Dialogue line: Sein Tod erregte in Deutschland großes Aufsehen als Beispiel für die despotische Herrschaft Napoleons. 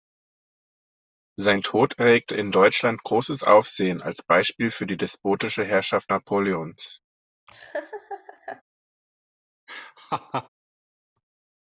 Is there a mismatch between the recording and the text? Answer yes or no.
no